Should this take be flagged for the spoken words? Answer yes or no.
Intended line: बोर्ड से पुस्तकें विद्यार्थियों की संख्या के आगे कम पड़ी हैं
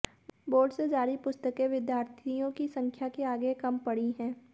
yes